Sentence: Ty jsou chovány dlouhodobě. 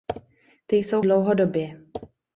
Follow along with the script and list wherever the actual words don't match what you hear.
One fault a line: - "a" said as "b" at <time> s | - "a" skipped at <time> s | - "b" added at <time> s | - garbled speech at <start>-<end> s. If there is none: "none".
- "chovány" skipped at 1.0 s